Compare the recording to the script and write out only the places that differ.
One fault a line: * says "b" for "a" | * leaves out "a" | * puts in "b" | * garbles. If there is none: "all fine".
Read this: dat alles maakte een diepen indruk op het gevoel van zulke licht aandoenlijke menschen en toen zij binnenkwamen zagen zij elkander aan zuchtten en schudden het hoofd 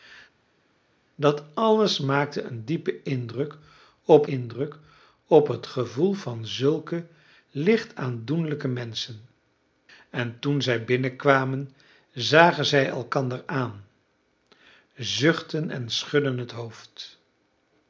* puts in "indruk op"